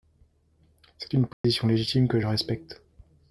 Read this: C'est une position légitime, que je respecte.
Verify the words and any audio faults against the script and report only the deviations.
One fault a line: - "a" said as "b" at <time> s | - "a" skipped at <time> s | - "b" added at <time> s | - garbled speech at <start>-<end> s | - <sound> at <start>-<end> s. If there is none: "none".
- dropout at 1.3-1.4 s